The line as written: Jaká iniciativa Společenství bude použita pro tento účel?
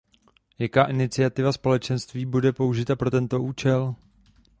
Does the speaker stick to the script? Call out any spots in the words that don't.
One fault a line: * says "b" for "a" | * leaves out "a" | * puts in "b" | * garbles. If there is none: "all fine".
all fine